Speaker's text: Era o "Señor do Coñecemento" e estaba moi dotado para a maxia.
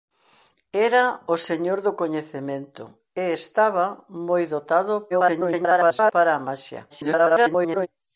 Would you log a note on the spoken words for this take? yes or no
yes